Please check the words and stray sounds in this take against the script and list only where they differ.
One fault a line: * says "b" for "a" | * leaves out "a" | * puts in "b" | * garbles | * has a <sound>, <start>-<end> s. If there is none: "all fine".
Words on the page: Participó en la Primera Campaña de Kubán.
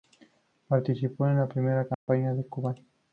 * has a dropout, 1.9-2.1 s